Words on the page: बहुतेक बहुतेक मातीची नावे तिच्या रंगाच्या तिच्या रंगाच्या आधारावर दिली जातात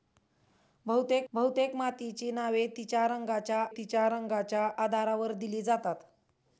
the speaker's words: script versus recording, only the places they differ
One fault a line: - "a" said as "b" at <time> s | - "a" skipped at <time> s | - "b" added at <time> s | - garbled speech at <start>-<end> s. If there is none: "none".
none